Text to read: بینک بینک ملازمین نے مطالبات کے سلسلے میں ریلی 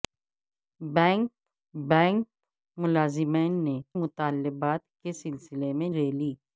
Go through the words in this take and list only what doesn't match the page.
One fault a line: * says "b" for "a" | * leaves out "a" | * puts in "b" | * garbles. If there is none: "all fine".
all fine